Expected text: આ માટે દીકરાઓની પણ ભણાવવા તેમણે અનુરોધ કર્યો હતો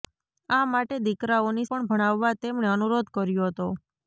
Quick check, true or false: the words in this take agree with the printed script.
true